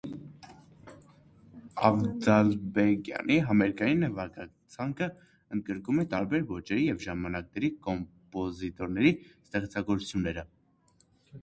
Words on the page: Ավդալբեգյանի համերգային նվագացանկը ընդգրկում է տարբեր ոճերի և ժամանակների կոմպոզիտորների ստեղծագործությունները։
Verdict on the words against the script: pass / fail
pass